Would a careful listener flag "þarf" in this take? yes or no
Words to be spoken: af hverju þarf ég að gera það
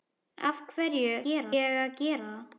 yes